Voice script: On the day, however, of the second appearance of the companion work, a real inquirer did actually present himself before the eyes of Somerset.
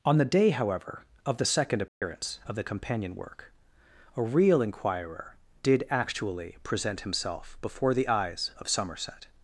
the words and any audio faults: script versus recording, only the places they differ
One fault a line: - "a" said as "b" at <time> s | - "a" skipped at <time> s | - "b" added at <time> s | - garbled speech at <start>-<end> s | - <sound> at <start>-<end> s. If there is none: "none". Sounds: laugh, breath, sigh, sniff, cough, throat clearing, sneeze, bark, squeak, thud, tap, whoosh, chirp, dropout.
- dropout at 1.9-2.0 s